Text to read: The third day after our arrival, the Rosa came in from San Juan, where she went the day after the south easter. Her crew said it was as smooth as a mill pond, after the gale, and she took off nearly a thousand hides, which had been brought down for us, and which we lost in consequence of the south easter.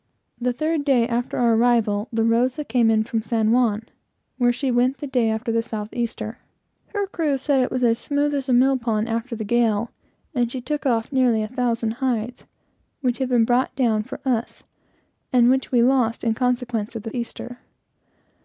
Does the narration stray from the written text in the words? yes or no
yes